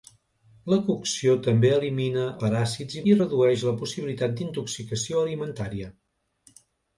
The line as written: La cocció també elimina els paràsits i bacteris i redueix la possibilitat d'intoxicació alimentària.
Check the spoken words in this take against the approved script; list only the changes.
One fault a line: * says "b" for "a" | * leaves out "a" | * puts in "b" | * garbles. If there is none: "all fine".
* leaves out "els"
* leaves out "bacteris"